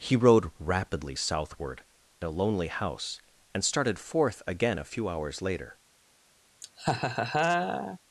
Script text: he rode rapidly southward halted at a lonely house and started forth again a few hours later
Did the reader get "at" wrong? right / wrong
wrong